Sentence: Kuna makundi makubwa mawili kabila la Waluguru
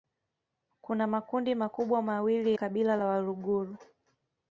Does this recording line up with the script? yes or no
yes